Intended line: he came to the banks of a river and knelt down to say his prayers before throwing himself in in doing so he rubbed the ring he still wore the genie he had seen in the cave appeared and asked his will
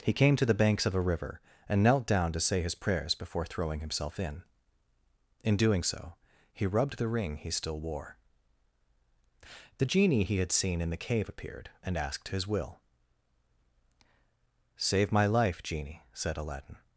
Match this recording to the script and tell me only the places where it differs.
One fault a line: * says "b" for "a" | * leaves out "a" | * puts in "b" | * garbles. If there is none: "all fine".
* puts in "save my life genie said aladdin"